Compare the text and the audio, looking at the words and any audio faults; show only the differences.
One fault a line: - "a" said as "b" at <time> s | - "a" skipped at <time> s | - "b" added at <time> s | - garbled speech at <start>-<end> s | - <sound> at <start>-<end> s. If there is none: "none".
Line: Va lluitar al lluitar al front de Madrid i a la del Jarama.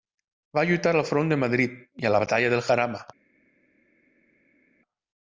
- "lluitar al" skipped at 1.1 s
- "batalla" added at 2.3 s